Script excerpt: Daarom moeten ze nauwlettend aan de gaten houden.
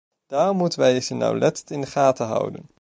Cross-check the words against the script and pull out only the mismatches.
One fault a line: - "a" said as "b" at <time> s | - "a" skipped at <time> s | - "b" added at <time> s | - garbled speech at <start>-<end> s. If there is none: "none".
- "wij" added at 0.8 s
- "aan" said as "in" at 1.7 s